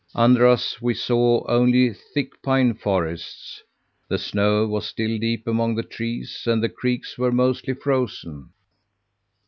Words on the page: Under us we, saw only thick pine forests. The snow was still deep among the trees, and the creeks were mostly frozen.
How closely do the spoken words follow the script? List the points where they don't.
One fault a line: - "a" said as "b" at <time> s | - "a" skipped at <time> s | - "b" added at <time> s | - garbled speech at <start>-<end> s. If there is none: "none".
none